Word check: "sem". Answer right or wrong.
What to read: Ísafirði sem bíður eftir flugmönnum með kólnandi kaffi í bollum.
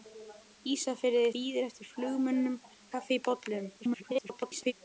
wrong